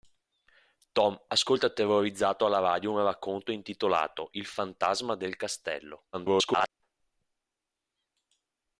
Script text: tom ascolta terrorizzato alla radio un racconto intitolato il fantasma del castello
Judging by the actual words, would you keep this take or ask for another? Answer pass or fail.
fail